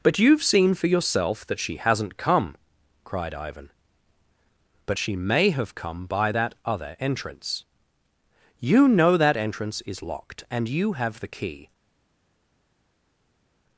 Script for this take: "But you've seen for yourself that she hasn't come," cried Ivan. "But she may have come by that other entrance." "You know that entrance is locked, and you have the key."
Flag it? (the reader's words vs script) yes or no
no